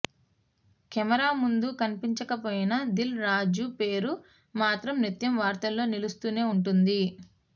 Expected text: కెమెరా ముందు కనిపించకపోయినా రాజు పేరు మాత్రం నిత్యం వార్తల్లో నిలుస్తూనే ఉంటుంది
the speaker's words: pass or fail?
fail